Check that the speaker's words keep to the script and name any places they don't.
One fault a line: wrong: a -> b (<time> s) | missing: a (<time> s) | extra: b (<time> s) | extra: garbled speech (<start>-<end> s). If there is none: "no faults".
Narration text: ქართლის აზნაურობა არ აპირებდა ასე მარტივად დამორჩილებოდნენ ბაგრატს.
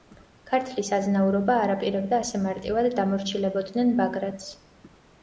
no faults